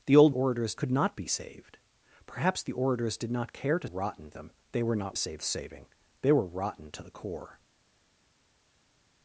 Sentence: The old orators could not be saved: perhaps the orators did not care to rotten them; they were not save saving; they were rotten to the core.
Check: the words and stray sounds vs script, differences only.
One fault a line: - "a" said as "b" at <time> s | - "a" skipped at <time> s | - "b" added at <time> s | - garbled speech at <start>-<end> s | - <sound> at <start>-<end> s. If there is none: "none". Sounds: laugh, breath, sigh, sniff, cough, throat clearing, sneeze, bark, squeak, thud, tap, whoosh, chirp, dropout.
none